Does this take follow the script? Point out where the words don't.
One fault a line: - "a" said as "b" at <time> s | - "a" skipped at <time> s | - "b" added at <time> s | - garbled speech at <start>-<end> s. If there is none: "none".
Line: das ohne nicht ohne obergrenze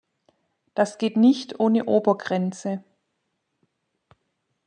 - "ohne" said as "geht" at 1.0 s